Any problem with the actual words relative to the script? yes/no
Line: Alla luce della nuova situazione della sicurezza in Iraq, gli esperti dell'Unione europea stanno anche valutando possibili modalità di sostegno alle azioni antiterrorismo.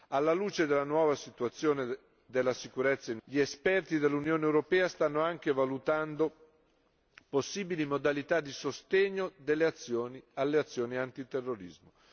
yes